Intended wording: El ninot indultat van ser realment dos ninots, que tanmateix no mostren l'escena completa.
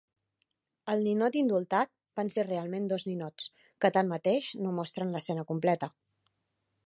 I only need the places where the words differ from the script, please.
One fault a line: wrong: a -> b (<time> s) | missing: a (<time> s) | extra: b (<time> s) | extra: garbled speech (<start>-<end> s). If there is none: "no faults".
no faults